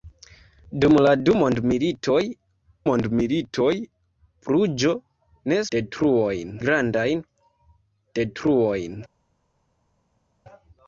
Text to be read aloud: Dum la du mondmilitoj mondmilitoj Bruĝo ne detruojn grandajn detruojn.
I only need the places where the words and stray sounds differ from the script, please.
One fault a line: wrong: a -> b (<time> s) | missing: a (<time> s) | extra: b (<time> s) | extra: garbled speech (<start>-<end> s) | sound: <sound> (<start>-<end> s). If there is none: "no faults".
no faults